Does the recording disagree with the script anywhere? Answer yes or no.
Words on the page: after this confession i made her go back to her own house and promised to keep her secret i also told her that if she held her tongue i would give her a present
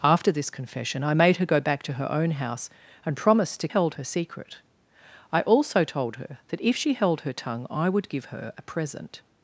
yes